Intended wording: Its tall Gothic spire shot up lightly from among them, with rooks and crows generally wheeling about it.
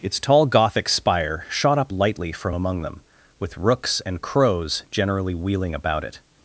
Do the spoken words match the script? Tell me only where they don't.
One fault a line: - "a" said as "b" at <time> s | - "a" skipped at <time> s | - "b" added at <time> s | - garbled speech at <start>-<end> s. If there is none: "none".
none